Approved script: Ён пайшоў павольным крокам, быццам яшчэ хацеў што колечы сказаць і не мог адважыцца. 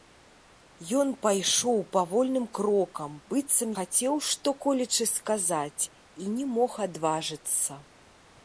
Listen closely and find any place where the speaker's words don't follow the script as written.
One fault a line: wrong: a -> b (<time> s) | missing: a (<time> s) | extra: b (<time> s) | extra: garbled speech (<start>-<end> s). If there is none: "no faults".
missing: яшчэ (3.8 s)